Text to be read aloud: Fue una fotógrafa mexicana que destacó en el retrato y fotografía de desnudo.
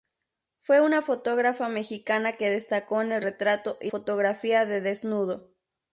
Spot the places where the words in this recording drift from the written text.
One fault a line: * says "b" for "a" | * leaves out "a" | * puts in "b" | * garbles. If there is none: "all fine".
all fine